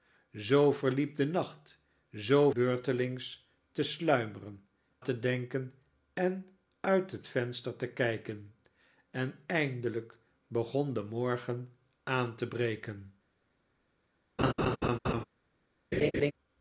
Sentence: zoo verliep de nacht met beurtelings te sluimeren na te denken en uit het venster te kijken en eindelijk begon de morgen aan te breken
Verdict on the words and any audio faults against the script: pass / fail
fail